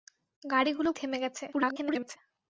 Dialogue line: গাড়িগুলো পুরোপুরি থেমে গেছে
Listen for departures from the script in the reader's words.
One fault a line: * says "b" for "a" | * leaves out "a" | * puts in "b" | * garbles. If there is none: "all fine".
* leaves out "পুরোপুরি"
* garbles